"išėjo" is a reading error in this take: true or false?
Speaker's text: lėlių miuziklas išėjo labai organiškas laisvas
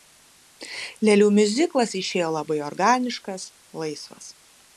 false